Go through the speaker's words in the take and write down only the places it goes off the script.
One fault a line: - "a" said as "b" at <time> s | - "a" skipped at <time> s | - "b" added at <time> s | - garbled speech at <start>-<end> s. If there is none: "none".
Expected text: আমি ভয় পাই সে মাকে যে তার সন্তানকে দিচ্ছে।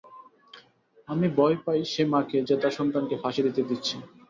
- "ফাঁসি দিতে" added at 3.2 s